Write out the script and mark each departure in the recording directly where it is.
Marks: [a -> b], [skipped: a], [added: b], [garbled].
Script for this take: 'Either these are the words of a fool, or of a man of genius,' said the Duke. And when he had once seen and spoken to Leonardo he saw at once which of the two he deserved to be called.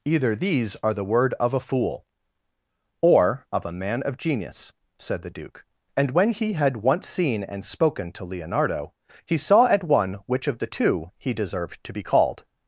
'Either these are the [words -> word] of a fool, or of a man of genius,' said the Duke. And when he had once seen and spoken to Leonardo he saw at [once -> one] which of the two he deserved to be called.